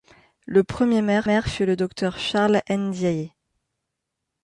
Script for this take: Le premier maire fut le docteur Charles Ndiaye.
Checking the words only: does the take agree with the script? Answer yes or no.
no